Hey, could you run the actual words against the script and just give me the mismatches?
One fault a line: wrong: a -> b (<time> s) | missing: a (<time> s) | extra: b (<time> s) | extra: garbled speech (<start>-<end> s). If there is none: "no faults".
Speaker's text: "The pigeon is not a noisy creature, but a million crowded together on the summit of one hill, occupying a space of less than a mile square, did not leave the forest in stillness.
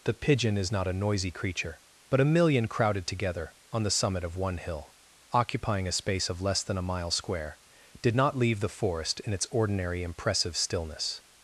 extra: its ordinary impressive (9.3 s)